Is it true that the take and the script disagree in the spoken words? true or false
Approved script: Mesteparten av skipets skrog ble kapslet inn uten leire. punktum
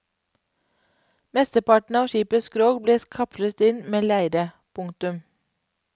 true